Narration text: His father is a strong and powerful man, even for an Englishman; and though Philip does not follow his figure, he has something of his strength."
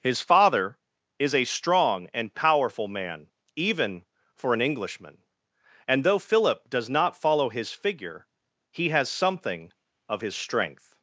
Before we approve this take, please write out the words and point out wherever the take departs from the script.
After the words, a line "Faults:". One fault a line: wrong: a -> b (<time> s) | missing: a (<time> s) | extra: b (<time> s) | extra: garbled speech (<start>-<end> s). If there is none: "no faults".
His father is a strong and powerful man, even for an Englishman; and though Philip does not follow his figure, he has something of his strength."
Faults:
no faults